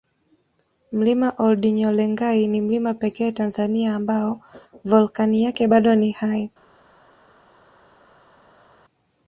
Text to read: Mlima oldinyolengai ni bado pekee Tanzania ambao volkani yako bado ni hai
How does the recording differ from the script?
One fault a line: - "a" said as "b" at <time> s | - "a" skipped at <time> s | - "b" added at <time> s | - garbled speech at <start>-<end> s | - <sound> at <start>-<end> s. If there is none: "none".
- "bado" said as "mlima" at 2.6 s
- "yako" said as "yake" at 5.4 s